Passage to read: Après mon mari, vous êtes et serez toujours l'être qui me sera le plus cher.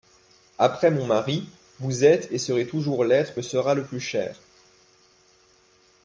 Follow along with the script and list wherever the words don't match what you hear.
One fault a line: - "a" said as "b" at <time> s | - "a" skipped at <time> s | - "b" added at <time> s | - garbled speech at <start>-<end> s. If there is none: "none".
- "qui" skipped at 3.4 s